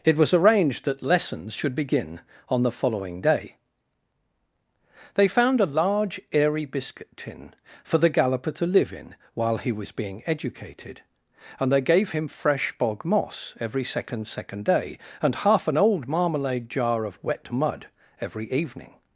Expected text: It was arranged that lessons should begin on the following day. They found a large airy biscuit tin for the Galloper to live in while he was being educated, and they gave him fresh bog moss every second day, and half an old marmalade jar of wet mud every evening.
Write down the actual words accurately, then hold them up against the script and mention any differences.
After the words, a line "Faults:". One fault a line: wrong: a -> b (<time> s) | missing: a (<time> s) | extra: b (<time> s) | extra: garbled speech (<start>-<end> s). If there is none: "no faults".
It was arranged that lessons should begin on the following day. They found a large airy biscuit tin for the Galloper to live in while he was being educated, and they gave him fresh bog moss every second second day, and half an old marmalade jar of wet mud every evening.
Faults:
extra: second (14.2 s)